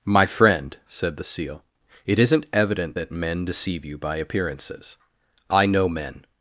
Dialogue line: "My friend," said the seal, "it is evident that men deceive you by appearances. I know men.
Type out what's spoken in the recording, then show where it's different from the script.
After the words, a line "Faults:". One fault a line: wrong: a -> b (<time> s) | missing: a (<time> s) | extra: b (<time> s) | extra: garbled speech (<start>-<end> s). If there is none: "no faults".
"My friend," said the seal, "it isn't evident that men deceive you by appearances. I know men.
Faults:
wrong: is -> isn't (2.2 s)